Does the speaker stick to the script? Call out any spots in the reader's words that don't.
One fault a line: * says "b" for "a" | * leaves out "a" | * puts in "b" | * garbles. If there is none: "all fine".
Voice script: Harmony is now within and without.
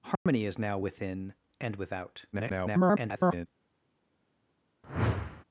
* garbles